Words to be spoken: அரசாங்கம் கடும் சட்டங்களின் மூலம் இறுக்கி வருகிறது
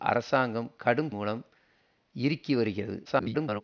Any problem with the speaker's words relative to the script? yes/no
yes